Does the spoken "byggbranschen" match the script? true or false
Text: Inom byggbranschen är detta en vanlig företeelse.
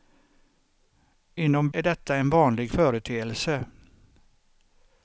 false